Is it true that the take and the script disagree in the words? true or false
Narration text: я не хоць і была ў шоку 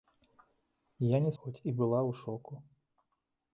false